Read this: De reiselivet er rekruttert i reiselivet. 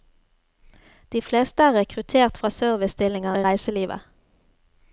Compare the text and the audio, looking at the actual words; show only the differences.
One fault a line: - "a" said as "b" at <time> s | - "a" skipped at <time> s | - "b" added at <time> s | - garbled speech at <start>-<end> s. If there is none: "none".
- "reiselivet" said as "fleste" at 1.2 s
- "fra servicestillinger" added at 2.4 s